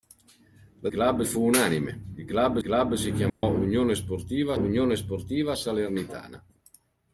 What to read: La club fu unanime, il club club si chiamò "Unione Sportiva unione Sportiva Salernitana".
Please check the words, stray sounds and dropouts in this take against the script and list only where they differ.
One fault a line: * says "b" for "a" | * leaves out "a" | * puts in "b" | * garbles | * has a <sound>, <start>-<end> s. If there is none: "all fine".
* has a dropout, 3.3-3.4 s